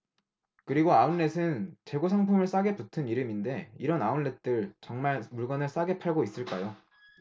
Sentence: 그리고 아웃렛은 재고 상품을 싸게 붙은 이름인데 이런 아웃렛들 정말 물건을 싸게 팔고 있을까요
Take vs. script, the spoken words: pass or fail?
pass